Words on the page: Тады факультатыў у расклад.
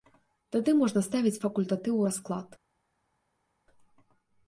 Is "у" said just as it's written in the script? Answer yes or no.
yes